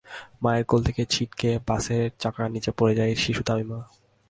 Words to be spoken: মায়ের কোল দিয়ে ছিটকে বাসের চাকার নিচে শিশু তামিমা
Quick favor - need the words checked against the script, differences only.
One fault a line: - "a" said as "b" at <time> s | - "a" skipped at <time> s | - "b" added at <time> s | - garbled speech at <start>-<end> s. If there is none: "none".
- "দিয়ে" said as "থেকে" at 0.8 s
- "পড়ে যায়" added at 2.8 s